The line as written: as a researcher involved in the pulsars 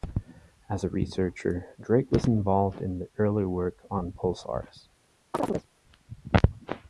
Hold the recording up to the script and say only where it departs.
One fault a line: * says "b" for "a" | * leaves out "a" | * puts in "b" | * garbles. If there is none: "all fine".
* puts in "drake was"
* puts in "early work on"